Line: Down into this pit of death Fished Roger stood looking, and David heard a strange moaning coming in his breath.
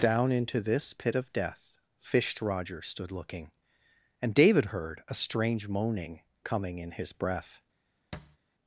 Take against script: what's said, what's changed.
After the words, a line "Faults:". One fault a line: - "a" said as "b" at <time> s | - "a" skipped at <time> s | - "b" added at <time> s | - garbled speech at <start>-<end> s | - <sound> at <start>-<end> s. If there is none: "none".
Down into this pit of death Fished Roger stood looking, and David heard a strange moaning coming in his breath.
Faults:
- thud at 8.1-8.4 s